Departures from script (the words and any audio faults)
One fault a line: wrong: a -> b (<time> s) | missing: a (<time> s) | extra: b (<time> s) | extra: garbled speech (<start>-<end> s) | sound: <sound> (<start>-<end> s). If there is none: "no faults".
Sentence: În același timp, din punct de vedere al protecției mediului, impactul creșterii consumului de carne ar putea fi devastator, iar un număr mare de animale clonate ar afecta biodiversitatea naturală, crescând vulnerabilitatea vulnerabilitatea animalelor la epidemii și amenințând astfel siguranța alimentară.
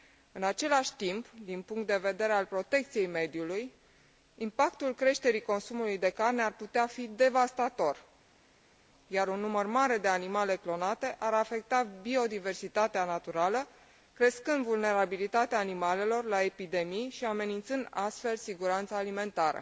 missing: vulnerabilitatea (15.6 s)